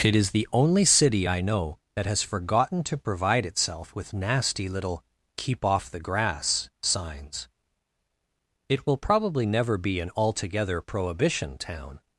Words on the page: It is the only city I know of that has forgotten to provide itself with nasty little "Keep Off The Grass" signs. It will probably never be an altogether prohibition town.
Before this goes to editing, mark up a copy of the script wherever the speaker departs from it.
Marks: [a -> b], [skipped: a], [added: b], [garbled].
It is the only city I know [skipped: of] that has forgotten to provide itself with nasty little "Keep Off The Grass" signs. It will probably never be an altogether prohibition town.